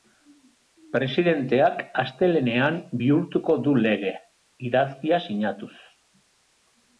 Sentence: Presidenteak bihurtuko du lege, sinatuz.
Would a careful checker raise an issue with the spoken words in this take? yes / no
yes